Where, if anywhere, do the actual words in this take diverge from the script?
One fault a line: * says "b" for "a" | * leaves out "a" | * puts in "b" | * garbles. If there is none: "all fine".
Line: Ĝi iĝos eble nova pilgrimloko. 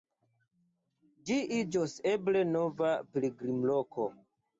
all fine